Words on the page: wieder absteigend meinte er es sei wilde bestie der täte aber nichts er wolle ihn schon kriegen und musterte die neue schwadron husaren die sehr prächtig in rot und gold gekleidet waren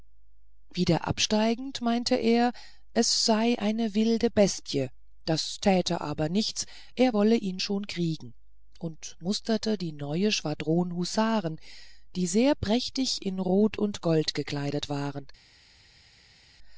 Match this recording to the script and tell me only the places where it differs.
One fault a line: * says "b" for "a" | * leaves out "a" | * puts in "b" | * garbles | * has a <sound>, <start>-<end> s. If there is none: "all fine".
* puts in "eine"
* says "das" for "der"